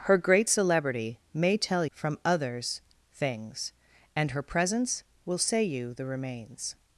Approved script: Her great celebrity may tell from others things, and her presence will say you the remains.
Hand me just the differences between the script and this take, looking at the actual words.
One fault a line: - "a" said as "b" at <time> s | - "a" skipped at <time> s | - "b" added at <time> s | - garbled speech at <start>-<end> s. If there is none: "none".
none